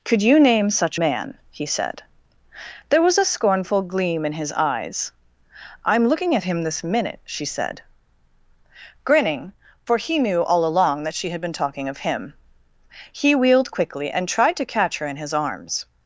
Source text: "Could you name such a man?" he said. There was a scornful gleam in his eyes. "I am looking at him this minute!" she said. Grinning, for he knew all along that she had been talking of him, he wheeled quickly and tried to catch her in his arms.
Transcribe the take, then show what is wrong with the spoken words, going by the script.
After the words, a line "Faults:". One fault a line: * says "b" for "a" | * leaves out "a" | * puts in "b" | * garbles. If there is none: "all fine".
"Could you name such man?" he said. There was a scornful gleam in his eyes. "I am looking at him this minute!" she said. Grinning, for he knew all along that she had been talking of him, he wheeled quickly and tried to catch her in his arms.
Faults:
* leaves out "a"